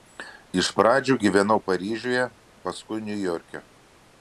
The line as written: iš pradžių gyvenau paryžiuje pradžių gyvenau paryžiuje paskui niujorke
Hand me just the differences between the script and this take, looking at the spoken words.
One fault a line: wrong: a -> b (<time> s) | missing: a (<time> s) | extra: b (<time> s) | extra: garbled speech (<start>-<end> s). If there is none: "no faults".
missing: pradžių gyvenau paryžiuje (2.2 s)